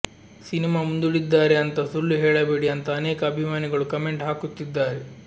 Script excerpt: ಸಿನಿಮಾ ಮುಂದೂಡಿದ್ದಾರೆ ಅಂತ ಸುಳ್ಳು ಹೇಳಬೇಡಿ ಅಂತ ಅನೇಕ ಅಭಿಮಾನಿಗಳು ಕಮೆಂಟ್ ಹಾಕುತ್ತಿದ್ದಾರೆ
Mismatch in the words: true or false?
false